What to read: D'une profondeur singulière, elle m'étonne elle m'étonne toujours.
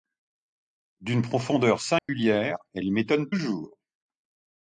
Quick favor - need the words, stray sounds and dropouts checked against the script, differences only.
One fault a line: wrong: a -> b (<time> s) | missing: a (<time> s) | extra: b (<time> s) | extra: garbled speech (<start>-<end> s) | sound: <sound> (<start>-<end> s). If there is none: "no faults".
sound: dropout (2.0-2.1 s)
missing: elle m'étonne (3.3 s)